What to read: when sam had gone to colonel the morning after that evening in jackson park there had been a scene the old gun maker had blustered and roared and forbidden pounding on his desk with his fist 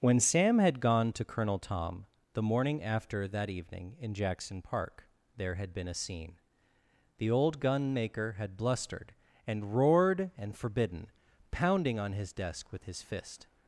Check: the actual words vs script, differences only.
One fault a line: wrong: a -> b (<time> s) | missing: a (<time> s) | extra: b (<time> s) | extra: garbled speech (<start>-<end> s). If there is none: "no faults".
extra: tom (1.6 s)